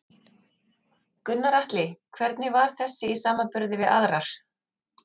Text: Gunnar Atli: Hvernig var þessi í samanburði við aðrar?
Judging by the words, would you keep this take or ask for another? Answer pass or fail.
pass